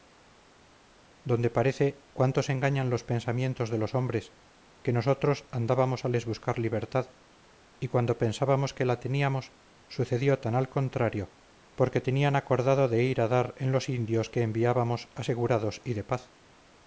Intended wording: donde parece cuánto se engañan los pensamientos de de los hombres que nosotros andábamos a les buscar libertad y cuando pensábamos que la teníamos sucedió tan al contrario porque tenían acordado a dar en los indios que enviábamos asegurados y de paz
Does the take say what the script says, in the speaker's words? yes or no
no